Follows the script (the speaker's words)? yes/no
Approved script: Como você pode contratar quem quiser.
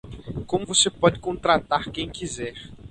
yes